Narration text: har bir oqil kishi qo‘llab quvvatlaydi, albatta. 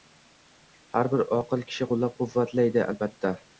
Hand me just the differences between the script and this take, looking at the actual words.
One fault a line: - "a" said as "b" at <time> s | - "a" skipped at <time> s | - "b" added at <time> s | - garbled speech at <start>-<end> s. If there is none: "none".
none